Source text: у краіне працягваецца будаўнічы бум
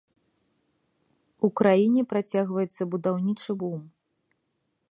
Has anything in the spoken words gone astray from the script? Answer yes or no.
no